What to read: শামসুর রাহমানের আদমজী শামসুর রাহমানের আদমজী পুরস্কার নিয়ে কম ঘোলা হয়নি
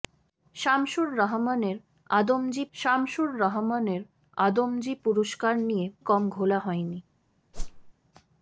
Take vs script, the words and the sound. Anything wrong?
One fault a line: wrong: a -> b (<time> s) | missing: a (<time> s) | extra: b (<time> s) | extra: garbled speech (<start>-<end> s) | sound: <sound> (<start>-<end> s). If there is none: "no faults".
sound: whoosh (7.5-7.9 s)